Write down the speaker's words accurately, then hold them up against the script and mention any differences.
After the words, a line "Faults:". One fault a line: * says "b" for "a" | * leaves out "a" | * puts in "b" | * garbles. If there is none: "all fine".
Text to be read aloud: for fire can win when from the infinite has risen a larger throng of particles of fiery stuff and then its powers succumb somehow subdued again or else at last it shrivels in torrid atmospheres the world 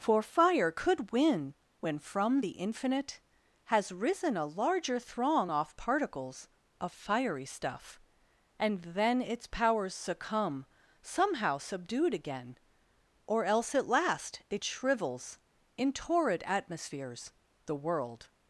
for fire could win when from the infinite has risen a larger throng off particles of fiery stuff and then its powers succumb somehow subdued again or else at last it shrivels in torrid atmospheres the world
Faults:
* says "could" for "can"
* says "off" for "of"